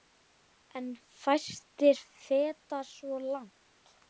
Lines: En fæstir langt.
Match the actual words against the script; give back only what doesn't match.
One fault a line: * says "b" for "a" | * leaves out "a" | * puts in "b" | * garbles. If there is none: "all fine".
* puts in "feta svo"